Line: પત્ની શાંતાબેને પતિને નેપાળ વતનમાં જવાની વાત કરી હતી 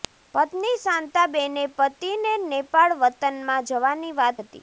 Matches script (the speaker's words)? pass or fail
fail